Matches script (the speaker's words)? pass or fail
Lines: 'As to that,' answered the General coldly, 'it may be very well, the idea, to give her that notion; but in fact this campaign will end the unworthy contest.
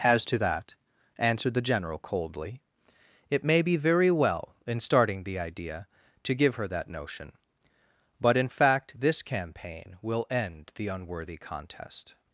fail